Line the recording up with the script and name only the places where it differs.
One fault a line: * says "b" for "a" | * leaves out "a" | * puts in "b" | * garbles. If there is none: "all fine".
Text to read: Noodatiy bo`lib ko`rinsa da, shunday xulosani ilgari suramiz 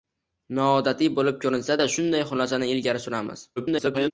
* garbles